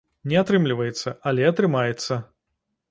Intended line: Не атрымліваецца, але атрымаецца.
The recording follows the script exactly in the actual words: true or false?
true